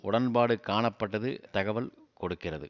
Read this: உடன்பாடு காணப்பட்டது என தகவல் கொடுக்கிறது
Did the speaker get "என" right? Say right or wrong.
wrong